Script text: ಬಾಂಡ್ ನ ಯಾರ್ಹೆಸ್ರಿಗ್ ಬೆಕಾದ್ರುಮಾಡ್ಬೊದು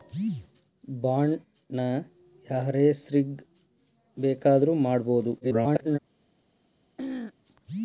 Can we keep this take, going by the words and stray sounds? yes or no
no